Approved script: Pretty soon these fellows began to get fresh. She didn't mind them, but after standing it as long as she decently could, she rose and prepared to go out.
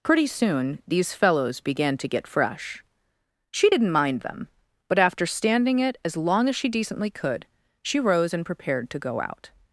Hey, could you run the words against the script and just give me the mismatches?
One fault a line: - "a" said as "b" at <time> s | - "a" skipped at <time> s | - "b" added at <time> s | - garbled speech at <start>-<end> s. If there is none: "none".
none